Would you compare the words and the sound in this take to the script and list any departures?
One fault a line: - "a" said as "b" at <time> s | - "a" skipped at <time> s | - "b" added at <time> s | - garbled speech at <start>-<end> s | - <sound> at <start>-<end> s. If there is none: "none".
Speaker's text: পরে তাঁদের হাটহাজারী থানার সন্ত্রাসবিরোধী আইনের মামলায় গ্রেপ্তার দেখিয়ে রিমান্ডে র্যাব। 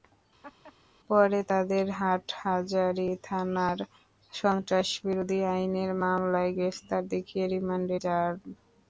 - laugh at 0.4-0.7 s